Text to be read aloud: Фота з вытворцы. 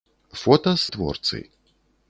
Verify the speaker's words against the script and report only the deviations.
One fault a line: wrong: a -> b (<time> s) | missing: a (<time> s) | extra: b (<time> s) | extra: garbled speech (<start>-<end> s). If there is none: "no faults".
no faults